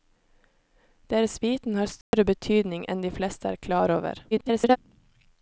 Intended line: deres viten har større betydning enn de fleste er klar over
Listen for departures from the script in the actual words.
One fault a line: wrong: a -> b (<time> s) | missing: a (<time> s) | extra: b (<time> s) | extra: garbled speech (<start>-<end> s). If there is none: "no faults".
extra: garbled speech (4.3-4.8 s)